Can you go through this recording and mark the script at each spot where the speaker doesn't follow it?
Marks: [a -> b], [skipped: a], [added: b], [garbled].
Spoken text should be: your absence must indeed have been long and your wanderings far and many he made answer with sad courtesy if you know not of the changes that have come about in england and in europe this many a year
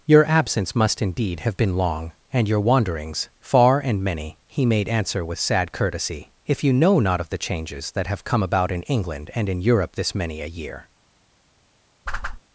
your absence must indeed have been long and your wanderings far and many he made answer with sad courtesy if you know not of the changes that have come about in england and in europe this many a year